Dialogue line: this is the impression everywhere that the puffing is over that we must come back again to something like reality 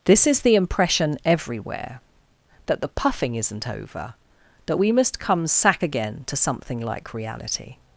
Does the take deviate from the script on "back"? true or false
true